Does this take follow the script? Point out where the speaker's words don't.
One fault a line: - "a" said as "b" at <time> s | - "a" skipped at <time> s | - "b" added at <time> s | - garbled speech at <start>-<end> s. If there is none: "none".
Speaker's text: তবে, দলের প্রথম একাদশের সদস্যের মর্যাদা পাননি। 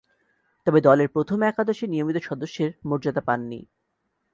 - "নিয়মিত" added at 1.9 s